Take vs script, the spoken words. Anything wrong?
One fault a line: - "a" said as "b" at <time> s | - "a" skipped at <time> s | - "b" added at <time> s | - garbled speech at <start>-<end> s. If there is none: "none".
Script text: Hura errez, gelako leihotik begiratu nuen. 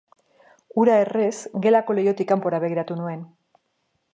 - "kanpora" added at 2.3 s